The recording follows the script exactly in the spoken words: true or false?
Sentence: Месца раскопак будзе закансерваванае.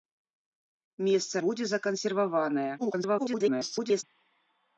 false